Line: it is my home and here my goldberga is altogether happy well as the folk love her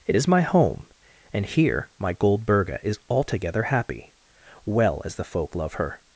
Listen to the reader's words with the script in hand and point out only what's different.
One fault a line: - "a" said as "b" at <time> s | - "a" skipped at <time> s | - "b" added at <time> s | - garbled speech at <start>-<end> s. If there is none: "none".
none